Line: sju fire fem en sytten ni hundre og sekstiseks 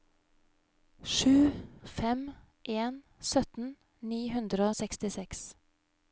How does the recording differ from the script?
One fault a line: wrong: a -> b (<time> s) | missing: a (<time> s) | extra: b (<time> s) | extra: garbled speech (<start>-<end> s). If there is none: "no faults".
missing: fire (1.5 s)
missing: og (4.7 s)